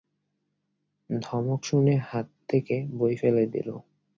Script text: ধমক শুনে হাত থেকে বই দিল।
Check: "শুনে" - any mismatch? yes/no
no